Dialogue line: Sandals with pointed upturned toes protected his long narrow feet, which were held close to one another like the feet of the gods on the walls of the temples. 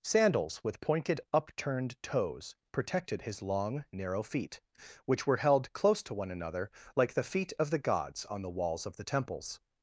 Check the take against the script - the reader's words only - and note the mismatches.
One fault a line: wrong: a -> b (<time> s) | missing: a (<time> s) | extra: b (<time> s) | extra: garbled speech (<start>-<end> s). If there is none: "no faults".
no faults